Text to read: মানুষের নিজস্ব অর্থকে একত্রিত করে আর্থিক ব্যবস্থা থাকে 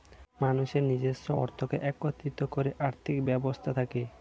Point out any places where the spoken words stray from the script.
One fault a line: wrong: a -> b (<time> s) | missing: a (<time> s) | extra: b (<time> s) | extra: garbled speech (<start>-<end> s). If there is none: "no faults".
no faults